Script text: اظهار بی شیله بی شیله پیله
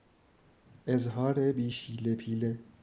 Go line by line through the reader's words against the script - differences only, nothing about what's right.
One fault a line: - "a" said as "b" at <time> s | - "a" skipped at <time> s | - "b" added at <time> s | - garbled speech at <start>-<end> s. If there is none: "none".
- "بی شیله" skipped at 2.1 s